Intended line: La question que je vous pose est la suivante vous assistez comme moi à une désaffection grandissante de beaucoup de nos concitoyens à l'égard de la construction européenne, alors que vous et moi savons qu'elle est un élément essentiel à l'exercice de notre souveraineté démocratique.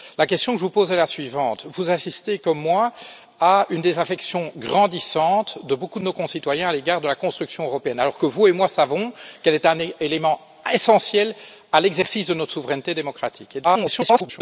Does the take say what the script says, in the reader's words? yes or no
no